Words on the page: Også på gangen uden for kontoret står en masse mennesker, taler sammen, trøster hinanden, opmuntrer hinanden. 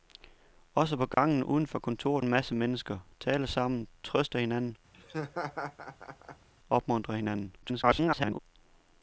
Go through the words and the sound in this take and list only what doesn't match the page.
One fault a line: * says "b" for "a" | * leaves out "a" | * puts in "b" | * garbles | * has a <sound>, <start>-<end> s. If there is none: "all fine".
* has a dropout, 1.1-1.2 s
* leaves out "står"
* has a laugh, 4.9-6.5 s
* garbles